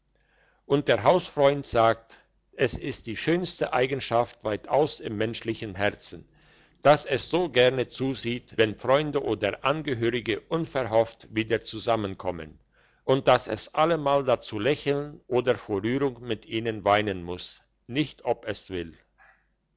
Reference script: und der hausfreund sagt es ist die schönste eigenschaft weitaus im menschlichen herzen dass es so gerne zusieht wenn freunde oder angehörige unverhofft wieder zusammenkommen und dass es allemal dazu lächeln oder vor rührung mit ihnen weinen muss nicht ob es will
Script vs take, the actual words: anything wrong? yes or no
no